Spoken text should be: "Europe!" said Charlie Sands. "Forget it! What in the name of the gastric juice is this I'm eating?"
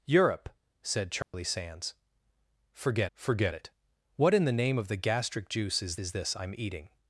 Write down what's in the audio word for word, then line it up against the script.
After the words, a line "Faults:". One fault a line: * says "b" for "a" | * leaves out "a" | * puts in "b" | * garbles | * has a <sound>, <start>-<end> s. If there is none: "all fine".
"Europe!" said Charlie Sands. "Forget forget it! What in the name of the gastric juice is is this I'm eating?"
Faults:
* has a dropout, 1.2-1.3 s
* puts in "forget"
* puts in "is"